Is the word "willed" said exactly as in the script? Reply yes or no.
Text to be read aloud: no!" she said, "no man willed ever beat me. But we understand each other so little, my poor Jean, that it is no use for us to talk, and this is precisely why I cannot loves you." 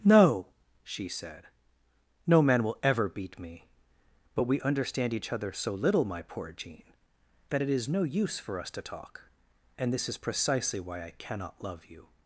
no